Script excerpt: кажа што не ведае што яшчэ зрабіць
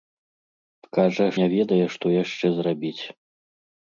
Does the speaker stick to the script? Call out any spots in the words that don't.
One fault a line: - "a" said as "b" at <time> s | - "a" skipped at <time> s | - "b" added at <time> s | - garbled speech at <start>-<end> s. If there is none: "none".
- "што" skipped at 1.3 s